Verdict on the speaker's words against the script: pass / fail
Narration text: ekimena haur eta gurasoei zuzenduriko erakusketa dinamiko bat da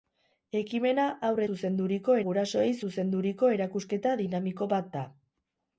fail